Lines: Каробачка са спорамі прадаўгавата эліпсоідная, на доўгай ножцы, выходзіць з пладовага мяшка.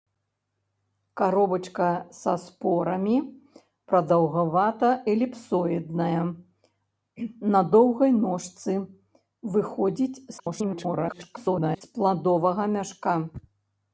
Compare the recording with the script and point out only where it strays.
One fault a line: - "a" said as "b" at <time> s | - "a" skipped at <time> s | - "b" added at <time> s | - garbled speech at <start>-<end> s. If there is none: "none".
- garbled speech at 10.4-11.8 s